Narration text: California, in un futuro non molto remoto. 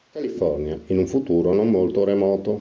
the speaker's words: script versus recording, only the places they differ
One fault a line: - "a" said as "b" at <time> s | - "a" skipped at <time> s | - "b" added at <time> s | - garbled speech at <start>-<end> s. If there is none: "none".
none